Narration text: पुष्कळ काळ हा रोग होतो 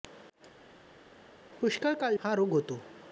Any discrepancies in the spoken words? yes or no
no